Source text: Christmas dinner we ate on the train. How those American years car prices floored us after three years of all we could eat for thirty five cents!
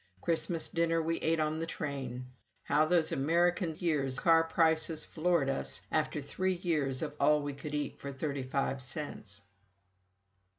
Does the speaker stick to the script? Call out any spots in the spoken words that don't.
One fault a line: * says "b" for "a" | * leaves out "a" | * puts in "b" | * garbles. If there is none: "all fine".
all fine